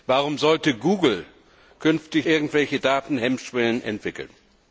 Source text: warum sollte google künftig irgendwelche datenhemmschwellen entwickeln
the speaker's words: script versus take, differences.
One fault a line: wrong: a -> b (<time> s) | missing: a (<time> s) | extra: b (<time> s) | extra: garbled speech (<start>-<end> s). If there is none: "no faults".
no faults